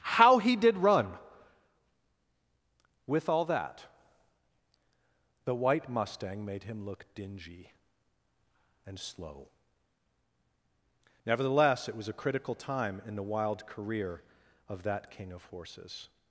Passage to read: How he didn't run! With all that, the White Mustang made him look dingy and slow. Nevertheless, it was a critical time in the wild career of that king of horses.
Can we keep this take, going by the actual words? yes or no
no